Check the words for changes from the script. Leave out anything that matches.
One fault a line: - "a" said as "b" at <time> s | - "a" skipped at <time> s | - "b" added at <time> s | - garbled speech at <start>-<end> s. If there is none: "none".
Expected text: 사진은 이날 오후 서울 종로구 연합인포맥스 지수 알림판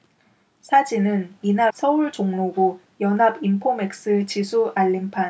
- "오후" skipped at 1.7 s